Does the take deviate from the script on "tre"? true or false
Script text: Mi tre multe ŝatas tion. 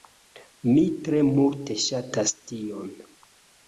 false